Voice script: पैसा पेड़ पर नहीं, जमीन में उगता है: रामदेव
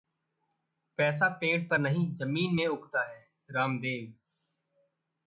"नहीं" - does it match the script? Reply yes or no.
yes